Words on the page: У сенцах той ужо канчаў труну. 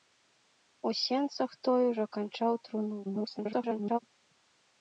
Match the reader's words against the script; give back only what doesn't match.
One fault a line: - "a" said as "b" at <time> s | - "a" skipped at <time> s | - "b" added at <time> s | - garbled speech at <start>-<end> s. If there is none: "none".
- garbled speech at 3.0-4.0 s